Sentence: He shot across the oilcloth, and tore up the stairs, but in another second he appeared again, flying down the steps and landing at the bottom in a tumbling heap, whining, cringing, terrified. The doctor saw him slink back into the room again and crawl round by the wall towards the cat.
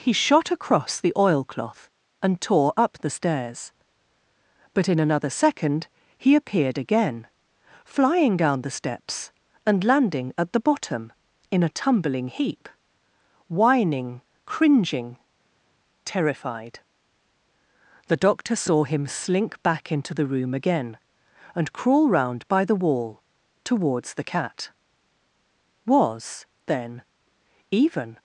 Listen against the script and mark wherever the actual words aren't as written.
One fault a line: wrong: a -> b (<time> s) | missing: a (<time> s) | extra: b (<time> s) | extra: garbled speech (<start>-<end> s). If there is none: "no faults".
extra: Was then even (25.8 s)